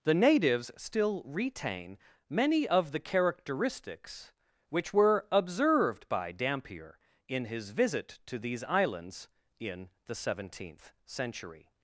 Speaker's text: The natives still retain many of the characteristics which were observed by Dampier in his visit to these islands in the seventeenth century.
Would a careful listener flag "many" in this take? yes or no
no